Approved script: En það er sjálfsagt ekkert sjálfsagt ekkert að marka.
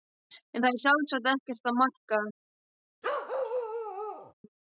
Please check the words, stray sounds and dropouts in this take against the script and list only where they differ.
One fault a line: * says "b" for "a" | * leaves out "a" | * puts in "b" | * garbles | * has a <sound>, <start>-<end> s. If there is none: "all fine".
* leaves out "sjálfsagt ekkert"
* has a bark, 3.0-4.3 s